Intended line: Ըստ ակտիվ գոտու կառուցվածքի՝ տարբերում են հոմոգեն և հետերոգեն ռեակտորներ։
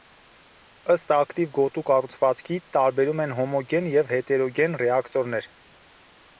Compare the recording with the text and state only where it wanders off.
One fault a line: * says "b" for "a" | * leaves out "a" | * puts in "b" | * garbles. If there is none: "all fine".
all fine